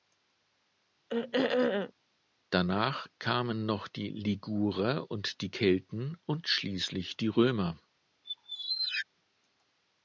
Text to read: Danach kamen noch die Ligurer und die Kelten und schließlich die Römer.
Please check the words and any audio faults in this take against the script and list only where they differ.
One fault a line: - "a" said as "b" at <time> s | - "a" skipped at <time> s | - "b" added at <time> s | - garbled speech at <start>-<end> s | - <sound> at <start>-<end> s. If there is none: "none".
- throat clearing at 1.1-1.9 s
- squeak at 8.2-9.1 s